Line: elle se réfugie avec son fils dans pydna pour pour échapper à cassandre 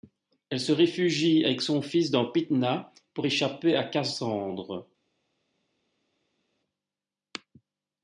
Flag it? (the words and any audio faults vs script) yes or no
yes